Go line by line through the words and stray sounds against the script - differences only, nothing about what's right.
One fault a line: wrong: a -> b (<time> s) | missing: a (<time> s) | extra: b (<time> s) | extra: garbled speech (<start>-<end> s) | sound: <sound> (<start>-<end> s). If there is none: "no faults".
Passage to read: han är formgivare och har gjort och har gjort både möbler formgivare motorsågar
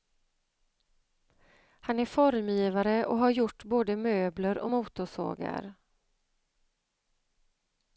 missing: och har gjort (3.6 s)
wrong: formgivare -> och (4.6 s)